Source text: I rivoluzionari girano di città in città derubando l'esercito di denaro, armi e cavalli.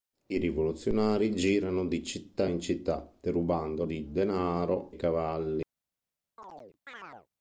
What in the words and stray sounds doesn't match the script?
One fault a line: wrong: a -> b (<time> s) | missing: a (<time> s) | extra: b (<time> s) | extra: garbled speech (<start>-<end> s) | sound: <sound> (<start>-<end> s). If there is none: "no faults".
missing: l'esercito (3.8 s)
missing: armi (4.9 s)
sound: chirp (6.4-7.3 s)